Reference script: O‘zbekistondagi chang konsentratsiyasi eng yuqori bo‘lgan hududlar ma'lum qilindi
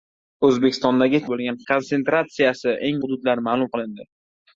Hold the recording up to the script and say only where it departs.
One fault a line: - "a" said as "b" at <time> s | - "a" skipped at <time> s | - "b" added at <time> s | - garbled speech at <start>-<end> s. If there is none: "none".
- "chang" said as "bo‘lgan" at 1.3 s
- "yuqori bo‘lgan" skipped at 3.0 s